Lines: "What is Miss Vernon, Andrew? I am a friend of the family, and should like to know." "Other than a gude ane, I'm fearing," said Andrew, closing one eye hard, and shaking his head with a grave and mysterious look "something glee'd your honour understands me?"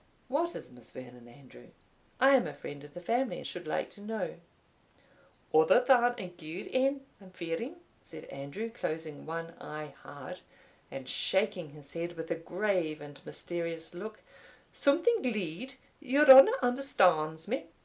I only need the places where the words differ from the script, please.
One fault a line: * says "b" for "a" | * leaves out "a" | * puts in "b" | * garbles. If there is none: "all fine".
* leaves out "and"